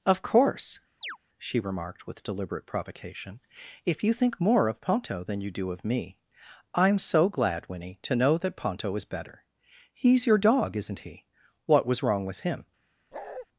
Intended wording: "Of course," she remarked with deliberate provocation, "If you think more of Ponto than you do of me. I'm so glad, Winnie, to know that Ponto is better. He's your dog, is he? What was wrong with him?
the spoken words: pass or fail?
fail